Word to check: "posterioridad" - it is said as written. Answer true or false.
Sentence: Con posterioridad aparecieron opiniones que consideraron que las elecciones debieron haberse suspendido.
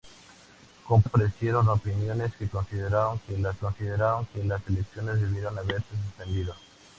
false